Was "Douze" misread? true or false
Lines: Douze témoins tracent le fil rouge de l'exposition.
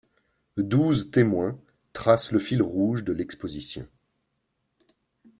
false